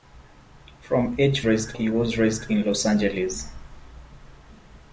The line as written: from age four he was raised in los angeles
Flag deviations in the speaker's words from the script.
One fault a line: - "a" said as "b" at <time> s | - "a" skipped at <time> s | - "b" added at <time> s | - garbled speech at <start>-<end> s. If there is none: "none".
- "four" said as "raised" at 1.4 s